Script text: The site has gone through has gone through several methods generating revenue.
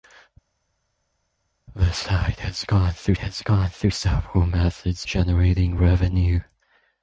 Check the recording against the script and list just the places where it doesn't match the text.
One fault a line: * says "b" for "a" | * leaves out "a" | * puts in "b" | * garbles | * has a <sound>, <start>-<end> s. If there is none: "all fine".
all fine